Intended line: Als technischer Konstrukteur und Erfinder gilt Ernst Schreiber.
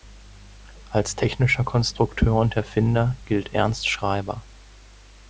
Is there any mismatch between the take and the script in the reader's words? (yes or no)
no